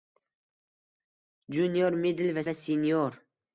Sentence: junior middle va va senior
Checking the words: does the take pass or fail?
pass